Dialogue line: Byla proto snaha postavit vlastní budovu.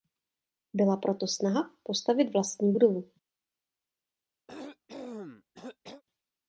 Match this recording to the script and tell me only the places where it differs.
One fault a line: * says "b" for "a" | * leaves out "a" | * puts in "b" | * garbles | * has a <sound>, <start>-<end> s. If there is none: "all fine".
* has a cough, 4.5-6.0 s